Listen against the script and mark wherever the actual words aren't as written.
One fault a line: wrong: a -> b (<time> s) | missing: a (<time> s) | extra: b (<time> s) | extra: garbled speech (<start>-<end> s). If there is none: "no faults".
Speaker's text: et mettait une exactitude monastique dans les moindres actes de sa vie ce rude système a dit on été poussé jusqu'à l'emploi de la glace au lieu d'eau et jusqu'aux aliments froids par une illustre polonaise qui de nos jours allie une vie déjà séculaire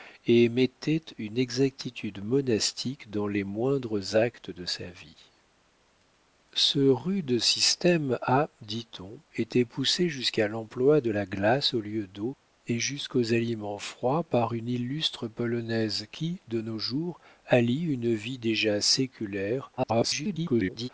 extra: garbled speech (19.8-20.9 s)